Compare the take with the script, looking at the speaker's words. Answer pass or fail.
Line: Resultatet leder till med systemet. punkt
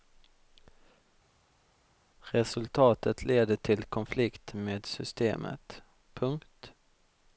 fail